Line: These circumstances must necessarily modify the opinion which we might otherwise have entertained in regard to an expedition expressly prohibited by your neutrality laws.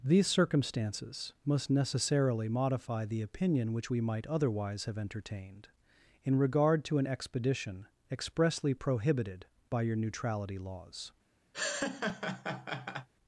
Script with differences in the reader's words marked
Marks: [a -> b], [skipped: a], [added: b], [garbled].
These circumstances must necessarily modify the opinion which we might otherwise have entertained in regard to an expedition expressly prohibited by your neutrality laws.